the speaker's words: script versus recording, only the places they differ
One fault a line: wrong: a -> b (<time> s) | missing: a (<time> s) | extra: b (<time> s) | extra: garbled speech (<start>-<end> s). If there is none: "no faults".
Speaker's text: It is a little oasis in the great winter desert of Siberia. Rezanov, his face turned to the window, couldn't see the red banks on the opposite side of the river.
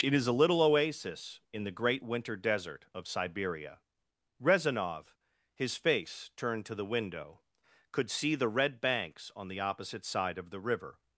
wrong: couldn't -> could (7.9 s)